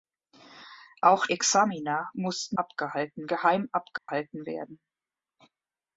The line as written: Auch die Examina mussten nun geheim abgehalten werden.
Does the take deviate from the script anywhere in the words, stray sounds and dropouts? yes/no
yes